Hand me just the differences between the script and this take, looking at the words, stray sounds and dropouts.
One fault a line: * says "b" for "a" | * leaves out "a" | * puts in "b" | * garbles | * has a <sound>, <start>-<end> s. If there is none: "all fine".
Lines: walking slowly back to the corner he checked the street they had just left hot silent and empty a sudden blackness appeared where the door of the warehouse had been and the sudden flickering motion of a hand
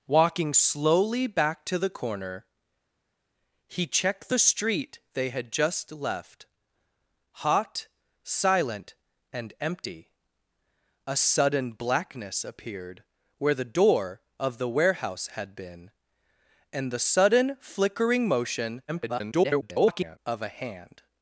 * garbles